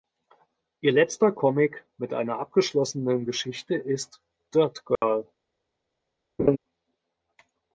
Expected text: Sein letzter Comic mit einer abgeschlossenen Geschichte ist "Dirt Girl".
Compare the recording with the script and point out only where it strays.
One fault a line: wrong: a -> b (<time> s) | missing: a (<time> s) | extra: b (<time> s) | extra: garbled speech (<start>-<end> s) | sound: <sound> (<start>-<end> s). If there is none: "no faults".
wrong: Sein -> Ihr (0.8 s)
sound: dropout (5.0-5.0 s)
sound: laugh (6.4-6.6 s)